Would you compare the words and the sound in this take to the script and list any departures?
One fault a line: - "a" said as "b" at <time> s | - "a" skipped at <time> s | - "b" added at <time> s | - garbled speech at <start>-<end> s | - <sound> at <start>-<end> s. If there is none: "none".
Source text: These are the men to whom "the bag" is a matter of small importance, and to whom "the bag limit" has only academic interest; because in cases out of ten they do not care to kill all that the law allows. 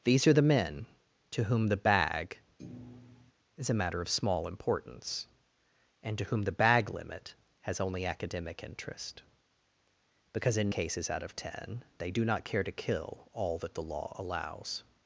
- thud at 2.6-3.3 s